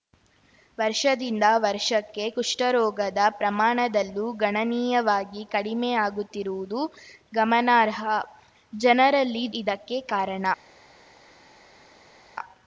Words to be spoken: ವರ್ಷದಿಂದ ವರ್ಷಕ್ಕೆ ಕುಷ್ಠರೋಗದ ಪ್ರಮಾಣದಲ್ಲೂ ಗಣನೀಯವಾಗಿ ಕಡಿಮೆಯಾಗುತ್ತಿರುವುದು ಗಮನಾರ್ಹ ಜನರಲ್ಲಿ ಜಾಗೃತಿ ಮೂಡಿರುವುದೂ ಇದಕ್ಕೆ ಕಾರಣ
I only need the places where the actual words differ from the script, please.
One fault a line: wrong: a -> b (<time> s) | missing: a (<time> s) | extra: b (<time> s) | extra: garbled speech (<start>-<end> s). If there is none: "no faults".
missing: ಜಾಗೃತಿ ಮೂಡಿರುವುದೂ (9.5 s)